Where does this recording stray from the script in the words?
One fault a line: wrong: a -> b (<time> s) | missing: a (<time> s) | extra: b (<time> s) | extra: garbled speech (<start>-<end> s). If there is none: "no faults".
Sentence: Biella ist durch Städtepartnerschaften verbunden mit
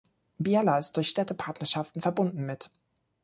no faults